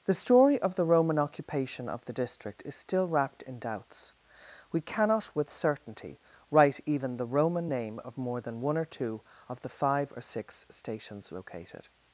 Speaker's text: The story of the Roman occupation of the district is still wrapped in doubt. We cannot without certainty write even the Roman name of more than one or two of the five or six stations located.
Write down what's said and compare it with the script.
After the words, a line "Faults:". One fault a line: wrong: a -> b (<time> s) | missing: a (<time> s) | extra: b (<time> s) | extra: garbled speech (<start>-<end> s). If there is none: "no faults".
The story of the Roman occupation of the district is still wrapped in doubts. We cannot with certainty write even the Roman name of more than one or two of the five or six stations located.
Faults:
wrong: doubt -> doubts (3.6 s)
wrong: without -> with (5.3 s)